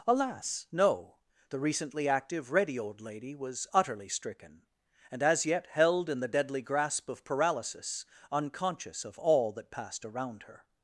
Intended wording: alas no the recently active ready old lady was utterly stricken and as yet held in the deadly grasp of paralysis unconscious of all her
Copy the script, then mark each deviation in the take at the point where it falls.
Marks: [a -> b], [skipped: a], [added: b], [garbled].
alas no the recently active ready old lady was utterly stricken and as yet held in the deadly grasp of paralysis unconscious of all [added: that passed around] her